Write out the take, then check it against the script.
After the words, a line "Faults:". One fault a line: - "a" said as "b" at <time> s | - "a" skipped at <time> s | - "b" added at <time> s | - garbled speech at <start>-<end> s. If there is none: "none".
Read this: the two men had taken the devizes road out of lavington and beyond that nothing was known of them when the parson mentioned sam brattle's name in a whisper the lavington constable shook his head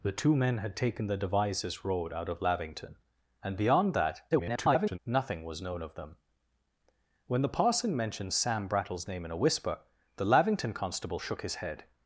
the two men had taken the devizes road out of lavington and beyond that [garbled] nothing was known of them when the parson mentioned sam brattle's name in a whisper the lavington constable shook his head
Faults:
- garbled speech at 4.3-5.0 s